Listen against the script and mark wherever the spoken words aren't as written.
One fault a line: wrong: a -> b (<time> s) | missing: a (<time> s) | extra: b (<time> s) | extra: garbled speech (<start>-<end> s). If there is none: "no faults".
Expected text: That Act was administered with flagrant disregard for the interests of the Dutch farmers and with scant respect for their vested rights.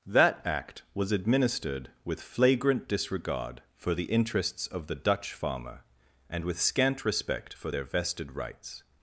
wrong: farmers -> farmer (5.3 s)